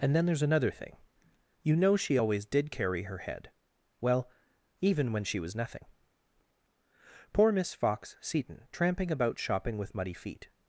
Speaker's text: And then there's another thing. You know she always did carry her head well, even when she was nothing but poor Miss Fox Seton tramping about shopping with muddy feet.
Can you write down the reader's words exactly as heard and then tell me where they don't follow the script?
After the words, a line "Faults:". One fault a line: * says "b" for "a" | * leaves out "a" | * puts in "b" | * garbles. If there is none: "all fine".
And then there's another thing. You know she always did carry her head well, even when she was nothing poor Miss Fox Seton tramping about shopping with muddy feet.
Faults:
* leaves out "but"